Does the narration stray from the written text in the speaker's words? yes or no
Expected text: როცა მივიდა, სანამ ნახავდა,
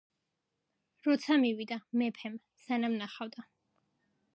yes